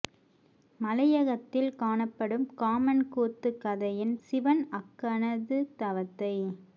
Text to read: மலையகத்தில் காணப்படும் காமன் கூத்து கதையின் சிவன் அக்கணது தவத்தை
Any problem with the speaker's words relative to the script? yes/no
no